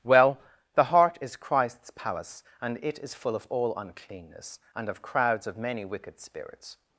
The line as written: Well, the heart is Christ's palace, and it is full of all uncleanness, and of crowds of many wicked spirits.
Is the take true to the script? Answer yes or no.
yes